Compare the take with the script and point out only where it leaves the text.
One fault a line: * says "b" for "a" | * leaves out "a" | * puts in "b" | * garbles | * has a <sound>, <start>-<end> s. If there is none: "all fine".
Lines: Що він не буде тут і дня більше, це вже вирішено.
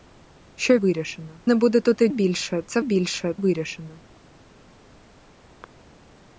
* says "вирішено" for "він"
* leaves out "дня"
* says "більше" for "вже"